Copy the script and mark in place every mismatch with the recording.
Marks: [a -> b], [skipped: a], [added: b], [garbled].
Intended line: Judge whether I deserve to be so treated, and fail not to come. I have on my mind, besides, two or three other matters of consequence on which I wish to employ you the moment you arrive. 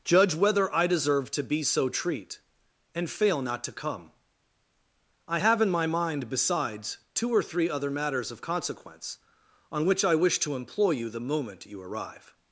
Judge whether I deserve to be so [treated, -> treat] and fail not to come. I have [on -> in] my mind, besides, two or three other matters of consequence on which I wish to employ you the moment you arrive.